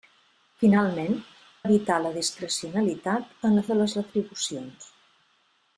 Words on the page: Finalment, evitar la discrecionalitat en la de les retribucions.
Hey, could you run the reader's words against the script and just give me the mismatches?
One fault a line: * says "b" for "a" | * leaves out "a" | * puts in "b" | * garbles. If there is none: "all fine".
all fine